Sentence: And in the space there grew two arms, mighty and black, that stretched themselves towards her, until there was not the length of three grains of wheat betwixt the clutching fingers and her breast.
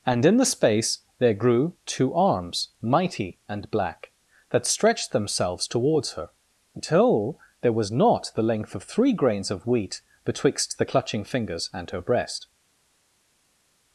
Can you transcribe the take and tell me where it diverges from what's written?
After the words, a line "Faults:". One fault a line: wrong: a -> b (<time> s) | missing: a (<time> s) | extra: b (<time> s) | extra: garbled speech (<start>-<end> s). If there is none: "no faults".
And in the space there grew two arms, mighty and black, that stretched themselves towards her, until there was not the length of three grains of wheat betwixt the clutching fingers and her breast.
Faults:
no faults